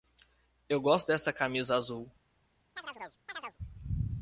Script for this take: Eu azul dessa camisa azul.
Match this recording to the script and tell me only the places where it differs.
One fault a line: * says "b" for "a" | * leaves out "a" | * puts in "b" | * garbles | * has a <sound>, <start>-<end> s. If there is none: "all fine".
* says "gosto" for "azul"
* has a chirp, 2.8-3.6 s